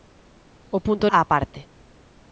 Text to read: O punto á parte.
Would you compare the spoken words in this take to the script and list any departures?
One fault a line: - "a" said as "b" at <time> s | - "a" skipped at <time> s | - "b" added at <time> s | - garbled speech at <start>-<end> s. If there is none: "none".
none